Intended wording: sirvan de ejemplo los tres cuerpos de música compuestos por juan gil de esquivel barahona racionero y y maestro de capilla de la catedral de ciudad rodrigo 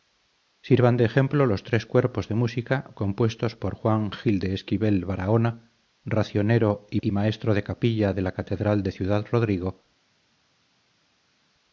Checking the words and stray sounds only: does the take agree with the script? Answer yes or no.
yes